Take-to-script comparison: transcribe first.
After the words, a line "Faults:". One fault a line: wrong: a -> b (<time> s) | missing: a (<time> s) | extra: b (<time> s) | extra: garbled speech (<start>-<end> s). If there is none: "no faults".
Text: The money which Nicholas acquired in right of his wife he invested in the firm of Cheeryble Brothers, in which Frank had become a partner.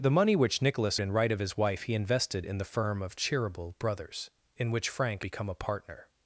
The money which Nicholas in right of his wife he invested in the firm of Cheeryble Brothers, in which Frank become a partner.
Faults:
missing: acquired (1.0 s)
missing: had (5.3 s)